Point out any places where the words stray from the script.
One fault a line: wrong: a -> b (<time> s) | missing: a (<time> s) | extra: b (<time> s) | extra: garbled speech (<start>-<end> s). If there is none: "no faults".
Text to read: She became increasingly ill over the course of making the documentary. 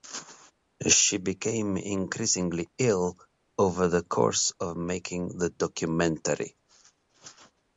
no faults